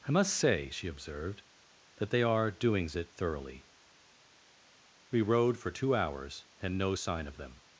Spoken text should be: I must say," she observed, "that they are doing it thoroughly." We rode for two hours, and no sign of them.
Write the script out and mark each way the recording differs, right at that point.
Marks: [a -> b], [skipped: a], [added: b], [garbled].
I must say," she observed, "that they are [doing -> doings] it thoroughly." We rode for two hours, and no sign of them.